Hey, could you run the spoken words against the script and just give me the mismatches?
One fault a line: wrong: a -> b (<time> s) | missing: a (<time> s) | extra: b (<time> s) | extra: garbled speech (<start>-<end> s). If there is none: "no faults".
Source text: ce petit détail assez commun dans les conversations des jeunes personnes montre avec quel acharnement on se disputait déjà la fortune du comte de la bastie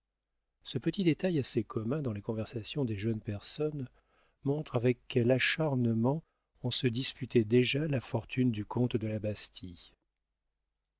no faults